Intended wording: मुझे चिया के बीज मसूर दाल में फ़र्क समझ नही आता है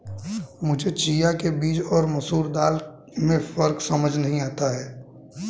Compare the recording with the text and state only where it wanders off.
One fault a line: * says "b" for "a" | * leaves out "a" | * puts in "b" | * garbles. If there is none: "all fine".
* puts in "और"